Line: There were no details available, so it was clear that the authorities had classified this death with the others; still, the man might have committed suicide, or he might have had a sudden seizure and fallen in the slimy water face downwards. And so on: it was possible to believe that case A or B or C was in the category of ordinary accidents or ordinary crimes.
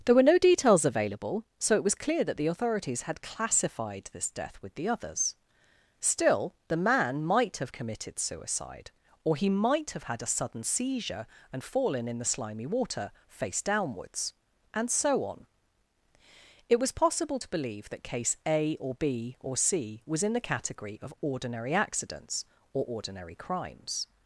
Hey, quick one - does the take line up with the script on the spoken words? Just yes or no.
yes